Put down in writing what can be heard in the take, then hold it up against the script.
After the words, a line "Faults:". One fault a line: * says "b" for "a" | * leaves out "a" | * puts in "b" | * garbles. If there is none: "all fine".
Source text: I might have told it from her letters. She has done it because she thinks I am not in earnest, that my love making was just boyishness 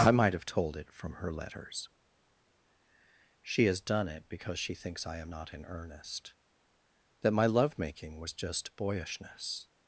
I might have told it from her letters. She has done it because she thinks I am not in earnest, that my love making was just boyishness
Faults:
all fine